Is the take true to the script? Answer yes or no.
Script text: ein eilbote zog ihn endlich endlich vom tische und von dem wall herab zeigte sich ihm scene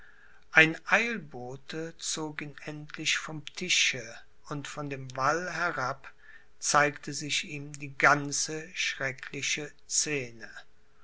no